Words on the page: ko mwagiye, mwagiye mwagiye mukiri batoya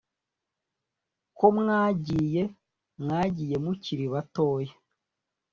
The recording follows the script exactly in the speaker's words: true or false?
false